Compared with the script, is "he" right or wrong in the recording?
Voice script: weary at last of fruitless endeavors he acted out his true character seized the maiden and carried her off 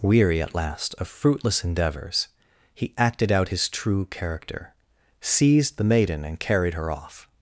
right